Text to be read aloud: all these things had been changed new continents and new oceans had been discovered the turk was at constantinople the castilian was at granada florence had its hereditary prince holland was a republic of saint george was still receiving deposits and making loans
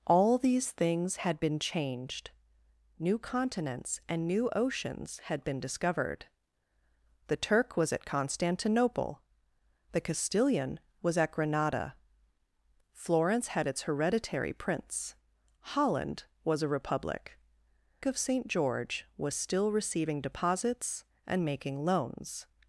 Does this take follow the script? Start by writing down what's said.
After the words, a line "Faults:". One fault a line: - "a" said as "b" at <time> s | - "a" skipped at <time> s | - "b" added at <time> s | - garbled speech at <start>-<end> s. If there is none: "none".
all these things had been changed new continents and new oceans had been discovered the turk was at constantinople the castilian was at granada florence had its hereditary prince holland was a republic of saint george was still receiving deposits and making loans
Faults:
none